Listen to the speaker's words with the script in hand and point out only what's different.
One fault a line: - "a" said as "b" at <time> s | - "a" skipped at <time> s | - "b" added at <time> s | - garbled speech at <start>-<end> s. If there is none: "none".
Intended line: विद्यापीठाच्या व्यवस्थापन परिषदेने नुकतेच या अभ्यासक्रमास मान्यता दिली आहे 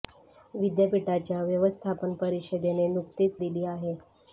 - "या अभ्यासक्रमास मान्यता" skipped at 3.4 s